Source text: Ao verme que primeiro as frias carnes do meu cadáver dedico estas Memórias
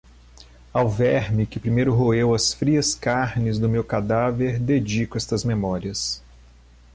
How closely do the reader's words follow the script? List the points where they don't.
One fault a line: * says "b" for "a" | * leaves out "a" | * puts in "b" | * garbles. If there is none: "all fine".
* puts in "roeu"